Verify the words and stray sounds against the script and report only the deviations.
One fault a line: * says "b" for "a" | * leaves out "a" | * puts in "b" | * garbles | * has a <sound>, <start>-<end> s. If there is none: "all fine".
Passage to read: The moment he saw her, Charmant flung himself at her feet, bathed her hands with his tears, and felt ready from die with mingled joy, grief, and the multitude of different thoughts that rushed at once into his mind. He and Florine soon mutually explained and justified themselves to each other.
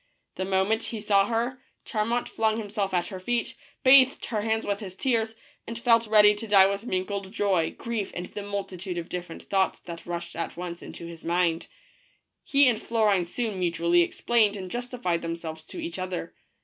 * says "to" for "from"